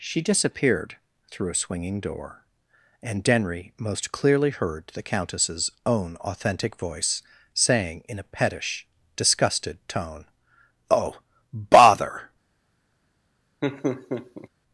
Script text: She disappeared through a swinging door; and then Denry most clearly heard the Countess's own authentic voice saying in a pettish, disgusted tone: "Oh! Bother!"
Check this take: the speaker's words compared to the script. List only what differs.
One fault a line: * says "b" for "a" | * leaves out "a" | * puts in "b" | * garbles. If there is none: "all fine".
* leaves out "then"